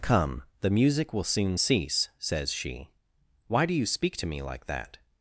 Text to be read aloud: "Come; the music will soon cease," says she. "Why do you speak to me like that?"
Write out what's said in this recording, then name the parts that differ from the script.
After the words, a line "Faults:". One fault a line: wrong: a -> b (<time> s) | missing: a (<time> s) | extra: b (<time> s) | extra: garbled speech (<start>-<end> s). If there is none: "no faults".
"Come; the music will soon cease," says she. "Why do you speak to me like that?"
Faults:
no faults